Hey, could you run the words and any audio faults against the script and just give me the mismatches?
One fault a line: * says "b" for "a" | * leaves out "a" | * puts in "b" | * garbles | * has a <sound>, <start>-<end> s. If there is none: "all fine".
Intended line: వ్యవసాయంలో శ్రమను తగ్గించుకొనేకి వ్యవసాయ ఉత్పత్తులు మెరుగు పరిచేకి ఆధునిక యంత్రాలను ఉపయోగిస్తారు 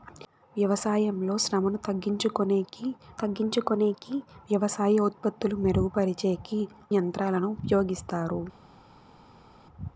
* puts in "తగ్గించుకొనేకి"
* leaves out "ఆధునిక"